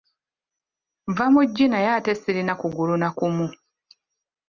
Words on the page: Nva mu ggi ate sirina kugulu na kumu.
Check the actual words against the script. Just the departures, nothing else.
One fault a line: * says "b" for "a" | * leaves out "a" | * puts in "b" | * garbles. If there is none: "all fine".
* puts in "naye"